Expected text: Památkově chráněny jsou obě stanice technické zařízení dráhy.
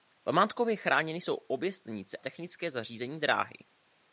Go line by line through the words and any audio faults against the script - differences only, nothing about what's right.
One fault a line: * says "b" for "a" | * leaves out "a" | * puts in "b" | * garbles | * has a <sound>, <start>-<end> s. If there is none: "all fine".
all fine